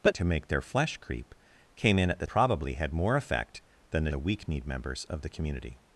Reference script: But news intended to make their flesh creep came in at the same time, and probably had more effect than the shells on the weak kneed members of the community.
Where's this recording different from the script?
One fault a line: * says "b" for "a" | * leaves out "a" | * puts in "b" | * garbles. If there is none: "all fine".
* leaves out "news intended"
* leaves out "same time and"
* leaves out "shells on"